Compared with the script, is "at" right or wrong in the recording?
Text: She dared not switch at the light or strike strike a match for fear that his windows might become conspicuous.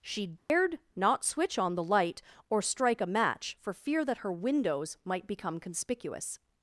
wrong